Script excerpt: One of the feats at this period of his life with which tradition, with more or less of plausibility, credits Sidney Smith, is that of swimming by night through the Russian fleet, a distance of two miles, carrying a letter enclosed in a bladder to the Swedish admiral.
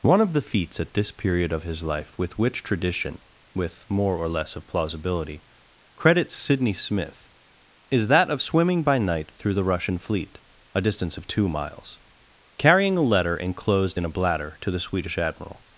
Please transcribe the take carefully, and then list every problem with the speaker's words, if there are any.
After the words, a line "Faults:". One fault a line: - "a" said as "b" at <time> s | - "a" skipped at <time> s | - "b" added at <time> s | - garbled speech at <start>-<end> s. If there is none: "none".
One of the feats at this period of his life with which tradition, with more or less of plausibility, credits Sidney Smith, is that of swimming by night through the Russian fleet, a distance of two miles, carrying a letter enclosed in a bladder to the Swedish admiral.
Faults:
none